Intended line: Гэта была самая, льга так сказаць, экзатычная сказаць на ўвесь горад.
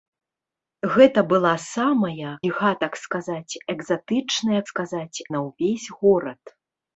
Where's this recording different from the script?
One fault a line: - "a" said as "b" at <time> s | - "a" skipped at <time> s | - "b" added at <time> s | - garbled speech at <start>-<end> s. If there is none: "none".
none